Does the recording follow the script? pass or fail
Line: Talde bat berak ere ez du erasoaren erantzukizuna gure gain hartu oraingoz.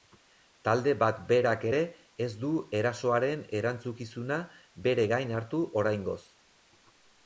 fail